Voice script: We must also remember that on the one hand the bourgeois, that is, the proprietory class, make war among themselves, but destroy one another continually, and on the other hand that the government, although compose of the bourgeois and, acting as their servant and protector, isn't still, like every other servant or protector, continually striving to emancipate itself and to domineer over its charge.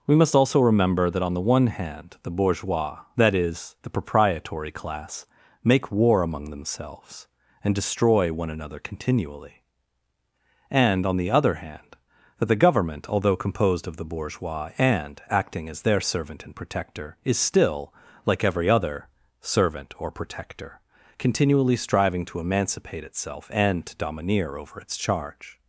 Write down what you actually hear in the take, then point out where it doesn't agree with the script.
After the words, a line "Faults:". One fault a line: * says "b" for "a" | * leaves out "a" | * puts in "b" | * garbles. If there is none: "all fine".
We must also remember that on the one hand the bourgeois, that is, the proprietory class, make war among themselves, and destroy one another continually, and on the other hand that the government, although composed of the bourgeois and, acting as their servant and protector, is still, like every other servant or protector, continually striving to emancipate itself and to domineer over its charge.
Faults:
* says "and" for "but"
* says "composed" for "compose"
* says "is" for "isn't"